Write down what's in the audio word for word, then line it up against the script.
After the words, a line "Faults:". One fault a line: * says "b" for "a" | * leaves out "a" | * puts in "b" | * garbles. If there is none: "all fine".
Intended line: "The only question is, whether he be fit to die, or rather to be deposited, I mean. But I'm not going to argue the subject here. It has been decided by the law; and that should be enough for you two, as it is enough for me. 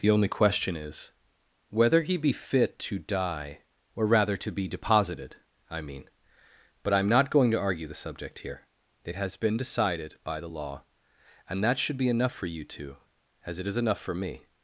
"The only question is, whether he be fit to die, or rather to be deposited, I mean. But I'm not going to argue the subject here. It has been decided by the law; and that should be enough for you two, as it is enough for me.
Faults:
all fine